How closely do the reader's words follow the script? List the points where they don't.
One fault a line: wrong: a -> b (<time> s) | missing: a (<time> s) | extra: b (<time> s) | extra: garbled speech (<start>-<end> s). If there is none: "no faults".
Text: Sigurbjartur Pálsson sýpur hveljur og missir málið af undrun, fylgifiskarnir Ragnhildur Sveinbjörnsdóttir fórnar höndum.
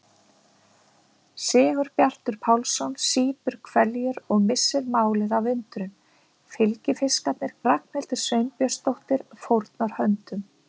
no faults